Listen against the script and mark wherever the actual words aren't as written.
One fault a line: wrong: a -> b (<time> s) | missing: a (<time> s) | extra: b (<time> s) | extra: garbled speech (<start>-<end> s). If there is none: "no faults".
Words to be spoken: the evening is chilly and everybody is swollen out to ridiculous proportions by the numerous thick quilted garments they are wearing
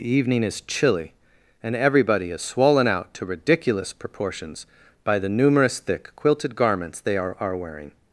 extra: are (7.4 s)